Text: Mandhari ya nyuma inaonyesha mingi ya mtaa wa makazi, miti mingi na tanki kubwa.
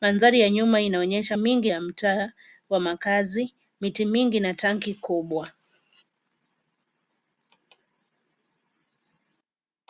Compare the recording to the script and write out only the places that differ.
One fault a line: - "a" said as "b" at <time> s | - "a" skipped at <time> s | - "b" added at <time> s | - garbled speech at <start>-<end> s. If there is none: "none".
none